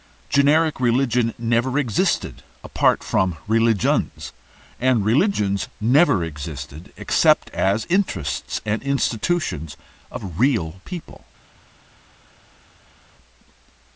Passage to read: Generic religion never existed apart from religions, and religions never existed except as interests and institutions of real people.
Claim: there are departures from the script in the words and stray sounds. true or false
false